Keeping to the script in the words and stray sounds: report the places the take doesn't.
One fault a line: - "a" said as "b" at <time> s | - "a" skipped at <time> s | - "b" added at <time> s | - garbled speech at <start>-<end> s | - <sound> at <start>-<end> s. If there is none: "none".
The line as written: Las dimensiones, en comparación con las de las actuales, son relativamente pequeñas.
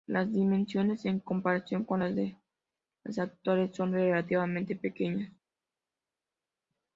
none